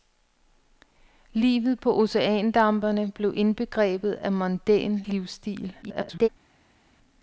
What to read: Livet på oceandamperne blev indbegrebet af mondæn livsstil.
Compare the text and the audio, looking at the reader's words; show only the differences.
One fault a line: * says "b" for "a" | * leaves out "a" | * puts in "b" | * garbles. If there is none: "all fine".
* garbles